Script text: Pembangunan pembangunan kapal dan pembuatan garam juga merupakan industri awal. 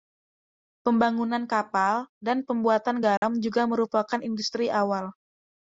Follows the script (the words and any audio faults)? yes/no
no